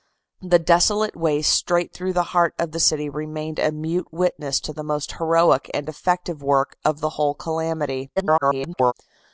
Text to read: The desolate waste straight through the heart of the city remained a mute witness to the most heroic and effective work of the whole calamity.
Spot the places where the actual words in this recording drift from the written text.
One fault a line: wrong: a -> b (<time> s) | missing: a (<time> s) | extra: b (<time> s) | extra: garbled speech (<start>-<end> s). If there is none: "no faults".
extra: garbled speech (8.2-8.9 s)